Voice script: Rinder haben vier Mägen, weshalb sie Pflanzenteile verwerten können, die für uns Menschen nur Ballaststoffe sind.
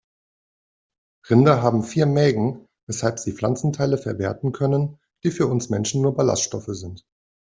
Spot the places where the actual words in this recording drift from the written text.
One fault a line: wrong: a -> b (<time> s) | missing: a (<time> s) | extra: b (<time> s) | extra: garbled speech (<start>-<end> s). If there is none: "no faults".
no faults